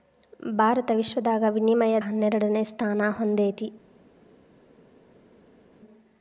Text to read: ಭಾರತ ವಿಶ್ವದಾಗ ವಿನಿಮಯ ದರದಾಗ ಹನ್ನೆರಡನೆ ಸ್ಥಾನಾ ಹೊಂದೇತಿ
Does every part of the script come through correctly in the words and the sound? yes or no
no